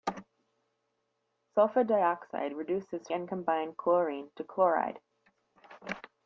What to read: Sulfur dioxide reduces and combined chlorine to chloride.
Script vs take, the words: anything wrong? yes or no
no